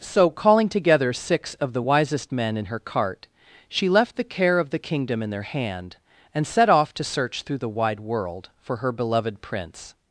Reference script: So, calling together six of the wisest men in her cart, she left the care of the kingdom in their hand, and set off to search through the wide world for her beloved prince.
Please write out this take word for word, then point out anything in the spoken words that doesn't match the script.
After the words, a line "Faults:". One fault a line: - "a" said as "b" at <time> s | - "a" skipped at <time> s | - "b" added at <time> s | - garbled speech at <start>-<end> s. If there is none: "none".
So, calling together six of the wisest men in her cart, she left the care of the kingdom in their hand, and set off to search through the wide world for her beloved prince.
Faults:
none